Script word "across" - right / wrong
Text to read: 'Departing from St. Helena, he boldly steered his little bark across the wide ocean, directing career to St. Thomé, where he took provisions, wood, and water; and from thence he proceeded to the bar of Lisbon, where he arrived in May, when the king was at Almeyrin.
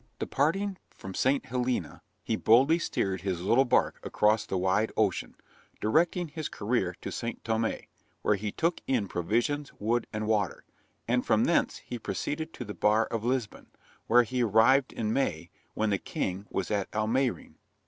right